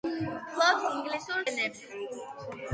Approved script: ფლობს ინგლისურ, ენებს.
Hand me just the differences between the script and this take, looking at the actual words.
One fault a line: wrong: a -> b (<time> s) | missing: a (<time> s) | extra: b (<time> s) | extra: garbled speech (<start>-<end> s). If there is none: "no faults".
no faults